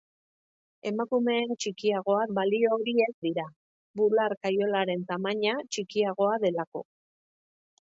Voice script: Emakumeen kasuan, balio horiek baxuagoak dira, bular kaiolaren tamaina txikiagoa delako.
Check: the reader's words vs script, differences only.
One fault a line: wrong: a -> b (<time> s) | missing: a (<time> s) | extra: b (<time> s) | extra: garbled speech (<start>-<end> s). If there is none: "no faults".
wrong: kasuan -> txikiagoa (1.6 s)
missing: baxuagoak (3.1 s)